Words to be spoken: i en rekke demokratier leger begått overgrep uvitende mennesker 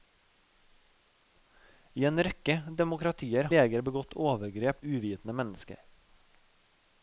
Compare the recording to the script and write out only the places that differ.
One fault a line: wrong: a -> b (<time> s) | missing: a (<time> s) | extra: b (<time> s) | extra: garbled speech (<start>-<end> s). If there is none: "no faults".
no faults